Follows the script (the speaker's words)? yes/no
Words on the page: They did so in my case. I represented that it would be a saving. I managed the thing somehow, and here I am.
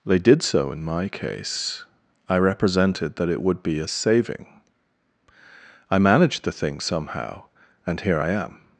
yes